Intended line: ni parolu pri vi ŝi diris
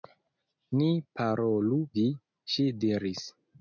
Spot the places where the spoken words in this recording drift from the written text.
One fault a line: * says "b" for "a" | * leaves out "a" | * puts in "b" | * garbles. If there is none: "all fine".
* leaves out "pri"